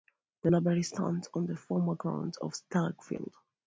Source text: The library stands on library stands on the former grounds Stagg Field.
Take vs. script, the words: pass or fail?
fail